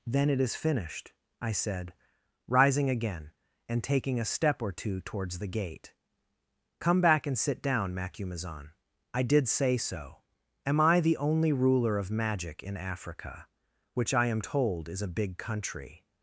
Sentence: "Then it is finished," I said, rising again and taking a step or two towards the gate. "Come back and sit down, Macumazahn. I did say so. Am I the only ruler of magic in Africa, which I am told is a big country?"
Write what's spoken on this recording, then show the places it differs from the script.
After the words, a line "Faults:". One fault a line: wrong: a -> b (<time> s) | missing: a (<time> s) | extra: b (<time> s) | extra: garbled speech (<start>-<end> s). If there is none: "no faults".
"Then it is finished," I said, rising again and taking a step or two towards the gate. "Come back and sit down, Macumazahn. I did say so. Am I the only ruler of magic in Africa, which I am told is a big country?"
Faults:
no faults